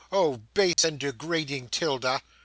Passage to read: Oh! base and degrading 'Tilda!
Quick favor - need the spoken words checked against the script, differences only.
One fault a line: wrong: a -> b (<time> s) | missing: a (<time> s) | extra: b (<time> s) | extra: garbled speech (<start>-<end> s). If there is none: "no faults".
no faults